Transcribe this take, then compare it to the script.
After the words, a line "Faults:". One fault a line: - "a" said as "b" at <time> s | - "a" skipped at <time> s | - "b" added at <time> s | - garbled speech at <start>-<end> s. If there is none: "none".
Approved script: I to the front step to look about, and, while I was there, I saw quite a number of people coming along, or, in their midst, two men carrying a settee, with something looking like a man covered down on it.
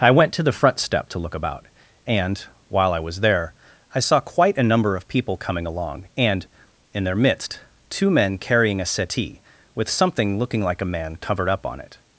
I went to the front step to look about, and, while I was there, I saw quite a number of people coming along, and, in their midst, two men carrying a settee, with something looking like a man covered up on it.
Faults:
- "went" added at 0.1 s
- "or" said as "and" at 6.2 s
- "down" said as "up" at 11.5 s